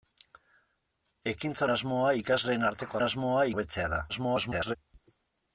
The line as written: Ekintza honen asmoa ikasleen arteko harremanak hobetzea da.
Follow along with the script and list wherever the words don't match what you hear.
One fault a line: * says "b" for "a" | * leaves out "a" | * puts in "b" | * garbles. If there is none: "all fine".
* leaves out "honen"
* says "asmoa" for "harremanak"
* garbles